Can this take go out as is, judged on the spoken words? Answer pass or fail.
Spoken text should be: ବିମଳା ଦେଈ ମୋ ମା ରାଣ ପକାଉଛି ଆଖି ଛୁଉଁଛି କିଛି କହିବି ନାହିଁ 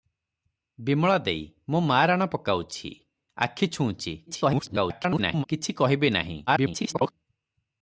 fail